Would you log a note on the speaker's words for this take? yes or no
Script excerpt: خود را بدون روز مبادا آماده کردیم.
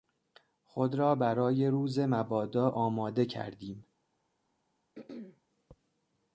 yes